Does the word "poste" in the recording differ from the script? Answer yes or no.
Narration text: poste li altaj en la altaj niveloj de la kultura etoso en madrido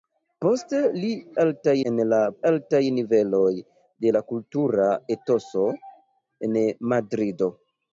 no